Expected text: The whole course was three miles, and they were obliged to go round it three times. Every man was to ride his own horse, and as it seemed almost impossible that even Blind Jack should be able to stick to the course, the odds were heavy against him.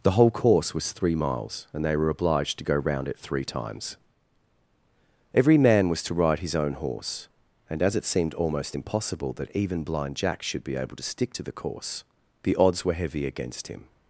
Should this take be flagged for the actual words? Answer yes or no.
no